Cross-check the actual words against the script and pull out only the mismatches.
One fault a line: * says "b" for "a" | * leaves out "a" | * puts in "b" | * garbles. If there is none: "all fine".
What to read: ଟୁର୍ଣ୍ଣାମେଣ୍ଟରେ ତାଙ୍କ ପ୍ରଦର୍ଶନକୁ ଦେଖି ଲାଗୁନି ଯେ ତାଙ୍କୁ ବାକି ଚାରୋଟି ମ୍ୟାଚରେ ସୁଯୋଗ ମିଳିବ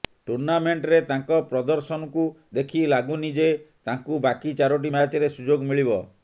all fine